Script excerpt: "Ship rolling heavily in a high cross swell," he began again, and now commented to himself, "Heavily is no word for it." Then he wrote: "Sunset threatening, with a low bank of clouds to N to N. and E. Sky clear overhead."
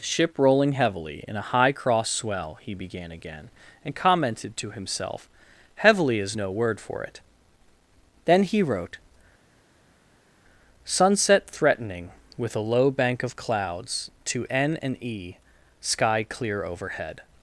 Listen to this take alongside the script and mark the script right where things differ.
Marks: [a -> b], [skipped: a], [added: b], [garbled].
"Ship rolling heavily in a high cross swell," he began again, and [skipped: now] commented to himself, "Heavily is no word for it." Then he wrote: "Sunset threatening, with a low bank of clouds to N [skipped: to N.] and E. Sky clear overhead."